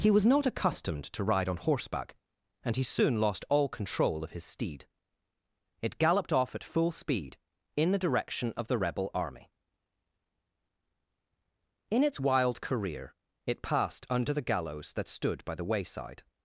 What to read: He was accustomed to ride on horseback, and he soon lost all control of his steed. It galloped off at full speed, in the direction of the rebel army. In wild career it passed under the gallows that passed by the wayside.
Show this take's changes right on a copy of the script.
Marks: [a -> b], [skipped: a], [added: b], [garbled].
He was [added: not] accustomed to ride on horseback, and he soon lost all control of his steed. It galloped off at full speed, in the direction of the rebel army. In [added: its] wild career it passed under the gallows that [passed -> stood] by the wayside.